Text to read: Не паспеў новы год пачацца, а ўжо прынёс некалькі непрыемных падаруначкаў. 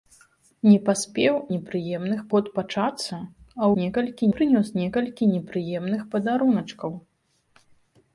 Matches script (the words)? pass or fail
fail